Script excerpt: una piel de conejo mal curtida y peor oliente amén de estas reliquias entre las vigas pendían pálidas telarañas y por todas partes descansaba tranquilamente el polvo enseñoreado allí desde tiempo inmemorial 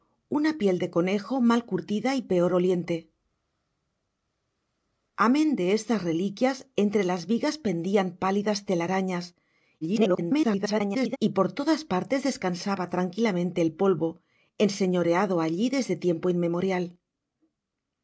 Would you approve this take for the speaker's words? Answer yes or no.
no